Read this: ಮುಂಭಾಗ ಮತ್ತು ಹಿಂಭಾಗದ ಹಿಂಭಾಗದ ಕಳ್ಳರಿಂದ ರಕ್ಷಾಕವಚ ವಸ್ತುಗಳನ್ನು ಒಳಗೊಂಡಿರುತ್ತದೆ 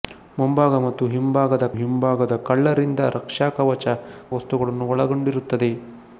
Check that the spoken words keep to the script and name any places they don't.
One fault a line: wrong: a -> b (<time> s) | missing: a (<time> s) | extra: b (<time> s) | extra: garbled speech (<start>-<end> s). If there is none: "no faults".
no faults